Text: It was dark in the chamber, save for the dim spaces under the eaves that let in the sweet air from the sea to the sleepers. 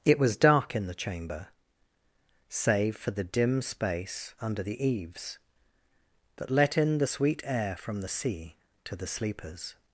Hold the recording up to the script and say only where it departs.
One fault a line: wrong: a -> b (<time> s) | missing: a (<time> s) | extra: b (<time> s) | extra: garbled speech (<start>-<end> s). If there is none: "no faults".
wrong: spaces -> space (3.6 s)